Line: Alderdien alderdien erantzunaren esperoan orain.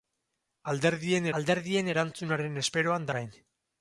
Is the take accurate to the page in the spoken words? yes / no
yes